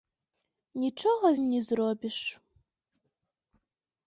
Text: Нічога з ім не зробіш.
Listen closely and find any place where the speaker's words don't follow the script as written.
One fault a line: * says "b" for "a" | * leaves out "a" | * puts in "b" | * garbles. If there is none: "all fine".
* leaves out "з"